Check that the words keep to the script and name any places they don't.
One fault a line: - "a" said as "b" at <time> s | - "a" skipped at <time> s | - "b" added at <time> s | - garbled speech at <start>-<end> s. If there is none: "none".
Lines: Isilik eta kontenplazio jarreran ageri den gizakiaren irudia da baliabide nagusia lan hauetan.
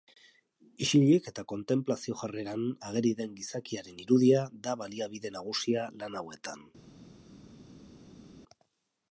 none